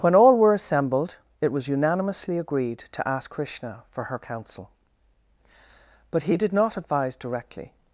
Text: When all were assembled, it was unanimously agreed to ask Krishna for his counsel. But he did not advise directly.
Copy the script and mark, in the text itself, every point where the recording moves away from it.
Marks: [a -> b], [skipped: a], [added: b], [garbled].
When all were assembled, it was unanimously agreed to ask Krishna for [his -> her] counsel. But he did not advise directly.